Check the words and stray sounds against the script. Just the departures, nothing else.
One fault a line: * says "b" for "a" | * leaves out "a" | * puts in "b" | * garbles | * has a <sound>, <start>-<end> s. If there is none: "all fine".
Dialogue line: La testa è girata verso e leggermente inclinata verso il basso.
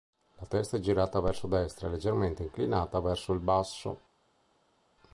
* puts in "destra"